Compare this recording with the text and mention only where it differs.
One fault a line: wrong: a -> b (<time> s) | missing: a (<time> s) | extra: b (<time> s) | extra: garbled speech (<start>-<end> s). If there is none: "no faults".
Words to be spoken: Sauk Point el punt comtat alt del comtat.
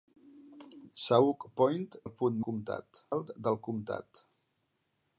no faults